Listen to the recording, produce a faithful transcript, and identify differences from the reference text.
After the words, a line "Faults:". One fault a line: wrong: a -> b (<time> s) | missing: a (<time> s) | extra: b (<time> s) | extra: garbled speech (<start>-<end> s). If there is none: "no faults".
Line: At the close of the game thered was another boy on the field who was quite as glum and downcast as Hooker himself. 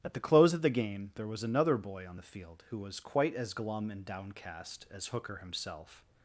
At the close of the game there was another boy on the field who was quite as glum and downcast as Hooker himself.
Faults:
wrong: thered -> there (1.1 s)